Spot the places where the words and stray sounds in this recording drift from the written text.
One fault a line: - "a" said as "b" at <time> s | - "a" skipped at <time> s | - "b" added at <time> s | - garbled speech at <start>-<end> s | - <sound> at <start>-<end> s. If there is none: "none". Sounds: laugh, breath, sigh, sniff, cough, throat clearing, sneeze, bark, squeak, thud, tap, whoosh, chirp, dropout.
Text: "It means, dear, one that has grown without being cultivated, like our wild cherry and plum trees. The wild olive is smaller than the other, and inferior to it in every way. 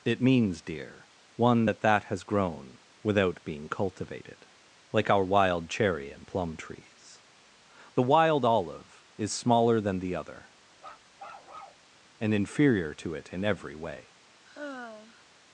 - "that" added at 1.8 s
- bark at 10.8-11.9 s
- sigh at 14.4-15.2 s